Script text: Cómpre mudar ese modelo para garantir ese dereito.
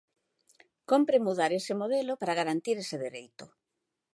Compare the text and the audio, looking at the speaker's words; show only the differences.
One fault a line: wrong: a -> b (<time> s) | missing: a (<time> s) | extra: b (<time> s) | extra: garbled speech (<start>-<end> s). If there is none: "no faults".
no faults